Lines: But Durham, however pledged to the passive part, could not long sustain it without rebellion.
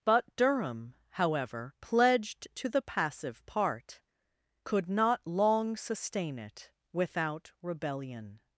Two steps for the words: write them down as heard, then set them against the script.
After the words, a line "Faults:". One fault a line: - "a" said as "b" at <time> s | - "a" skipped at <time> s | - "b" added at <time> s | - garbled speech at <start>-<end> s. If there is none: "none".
But Durham, however pledged to the passive part, could not long sustain it without rebellion.
Faults:
none